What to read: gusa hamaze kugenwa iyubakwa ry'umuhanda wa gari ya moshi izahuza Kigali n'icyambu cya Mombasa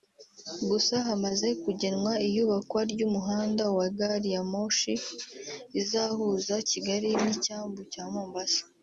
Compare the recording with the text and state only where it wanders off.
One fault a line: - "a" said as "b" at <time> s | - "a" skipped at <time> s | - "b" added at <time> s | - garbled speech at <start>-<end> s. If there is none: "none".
none